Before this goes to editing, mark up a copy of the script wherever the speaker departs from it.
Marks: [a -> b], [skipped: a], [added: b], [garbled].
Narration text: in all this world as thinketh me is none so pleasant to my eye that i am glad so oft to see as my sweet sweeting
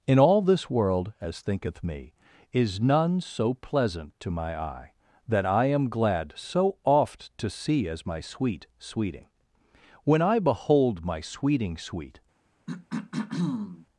in all this world as thinketh me is none so pleasant to my eye that i am glad so oft to see as my sweet sweeting [added: when i behold my sweeting sweet]